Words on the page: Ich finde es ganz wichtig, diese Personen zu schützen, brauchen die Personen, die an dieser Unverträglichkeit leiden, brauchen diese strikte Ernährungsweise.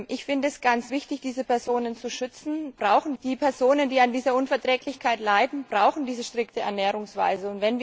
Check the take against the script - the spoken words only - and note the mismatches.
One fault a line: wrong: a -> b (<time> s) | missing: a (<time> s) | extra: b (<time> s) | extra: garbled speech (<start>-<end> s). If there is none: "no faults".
no faults